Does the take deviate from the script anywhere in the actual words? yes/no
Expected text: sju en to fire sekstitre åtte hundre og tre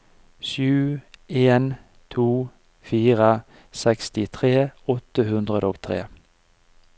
no